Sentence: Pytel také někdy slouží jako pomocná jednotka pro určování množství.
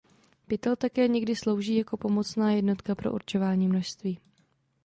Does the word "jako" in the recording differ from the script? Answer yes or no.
no